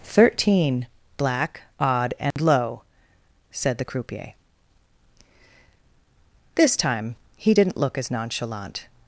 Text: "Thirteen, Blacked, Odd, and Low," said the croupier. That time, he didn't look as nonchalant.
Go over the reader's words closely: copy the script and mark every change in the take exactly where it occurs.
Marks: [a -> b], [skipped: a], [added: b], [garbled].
"Thirteen, [Blacked, -> Black] Odd, and Low," said the croupier. [That -> This] time, he didn't look as nonchalant.